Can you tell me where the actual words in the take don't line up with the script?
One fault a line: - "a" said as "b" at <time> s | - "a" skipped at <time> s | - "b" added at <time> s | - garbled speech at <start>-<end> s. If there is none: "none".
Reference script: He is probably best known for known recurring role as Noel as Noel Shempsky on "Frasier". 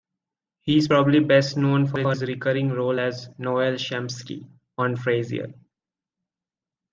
- "known" said as "his" at 2.1 s
- "as Noel" skipped at 3.8 s